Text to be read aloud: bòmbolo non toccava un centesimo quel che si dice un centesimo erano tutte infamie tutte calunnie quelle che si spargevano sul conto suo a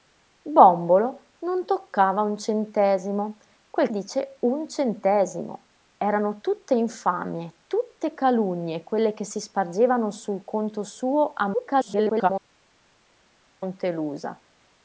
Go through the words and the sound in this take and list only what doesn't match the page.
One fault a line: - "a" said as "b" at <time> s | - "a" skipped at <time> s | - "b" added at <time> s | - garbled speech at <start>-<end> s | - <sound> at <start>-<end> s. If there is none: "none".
- "che si" skipped at 3.9 s
- garbled speech at 11.5-12.3 s